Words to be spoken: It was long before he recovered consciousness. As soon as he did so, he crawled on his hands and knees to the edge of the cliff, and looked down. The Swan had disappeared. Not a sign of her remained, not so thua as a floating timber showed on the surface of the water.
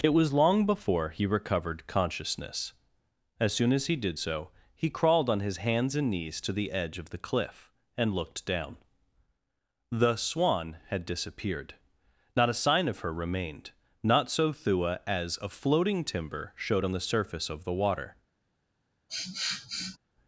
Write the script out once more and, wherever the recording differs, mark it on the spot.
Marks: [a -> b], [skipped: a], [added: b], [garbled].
It was long before he recovered consciousness. As soon as he did so, he crawled on his hands and knees to the edge of the cliff, and looked down. The Swan had disappeared. Not a sign of her remained, not so thua as a floating timber showed on the surface of the water.